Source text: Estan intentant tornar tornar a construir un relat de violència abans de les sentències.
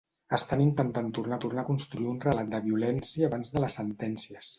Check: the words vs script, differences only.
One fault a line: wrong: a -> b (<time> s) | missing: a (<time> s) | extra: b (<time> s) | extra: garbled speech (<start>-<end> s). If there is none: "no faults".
no faults